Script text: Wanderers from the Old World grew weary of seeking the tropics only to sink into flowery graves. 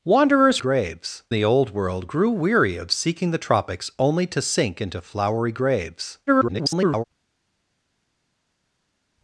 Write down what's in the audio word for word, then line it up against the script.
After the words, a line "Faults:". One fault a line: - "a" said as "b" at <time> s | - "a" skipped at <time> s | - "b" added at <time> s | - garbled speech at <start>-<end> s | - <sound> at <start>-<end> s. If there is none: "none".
Wanderers graves the Old World grew weary of seeking the tropics only to sink into flowery graves. [garbled]
Faults:
- "from" said as "graves" at 0.6 s
- garbled speech at 6.3-7.0 s